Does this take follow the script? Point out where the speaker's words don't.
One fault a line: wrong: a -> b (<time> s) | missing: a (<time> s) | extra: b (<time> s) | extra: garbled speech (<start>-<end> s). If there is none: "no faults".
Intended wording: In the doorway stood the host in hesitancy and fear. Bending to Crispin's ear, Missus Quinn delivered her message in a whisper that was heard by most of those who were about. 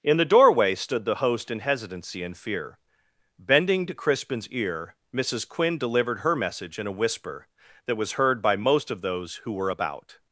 no faults